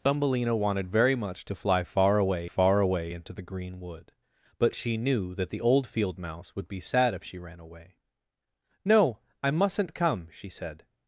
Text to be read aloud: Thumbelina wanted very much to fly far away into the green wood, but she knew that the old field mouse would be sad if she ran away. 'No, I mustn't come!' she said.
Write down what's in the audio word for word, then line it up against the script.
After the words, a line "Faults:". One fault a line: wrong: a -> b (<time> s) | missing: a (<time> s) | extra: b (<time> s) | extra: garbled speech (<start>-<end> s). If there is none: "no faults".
Thumbelina wanted very much to fly far away far away into the green wood, but she knew that the old field mouse would be sad if she ran away. 'No, I mustn't come!' she said.
Faults:
extra: far away (2.4 s)